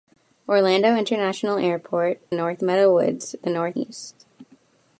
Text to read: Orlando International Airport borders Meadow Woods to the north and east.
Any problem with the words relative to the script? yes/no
yes